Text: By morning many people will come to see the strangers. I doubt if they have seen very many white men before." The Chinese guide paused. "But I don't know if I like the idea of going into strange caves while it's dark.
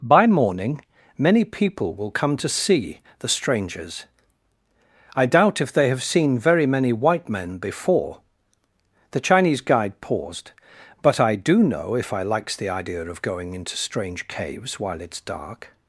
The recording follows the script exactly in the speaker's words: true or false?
false